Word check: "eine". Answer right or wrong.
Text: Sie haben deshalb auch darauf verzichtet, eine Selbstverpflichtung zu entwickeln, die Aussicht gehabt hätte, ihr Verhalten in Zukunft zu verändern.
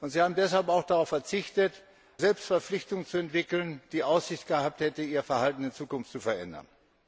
wrong